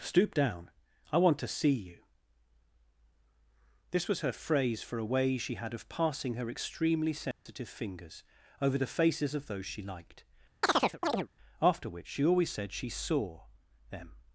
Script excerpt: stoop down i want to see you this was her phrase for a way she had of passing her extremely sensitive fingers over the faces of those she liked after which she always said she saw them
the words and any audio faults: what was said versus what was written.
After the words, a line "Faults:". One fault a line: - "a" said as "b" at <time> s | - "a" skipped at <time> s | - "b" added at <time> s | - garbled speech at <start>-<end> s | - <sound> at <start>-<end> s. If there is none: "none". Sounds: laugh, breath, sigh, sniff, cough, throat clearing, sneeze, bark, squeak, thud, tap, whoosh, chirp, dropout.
stoop down i want to see you this was her phrase for a way she had of passing her extremely sensitive fingers over the faces of those she liked after which she always said she saw them
Faults:
- dropout at 7.3-7.5 s
- chirp at 10.6-11.3 s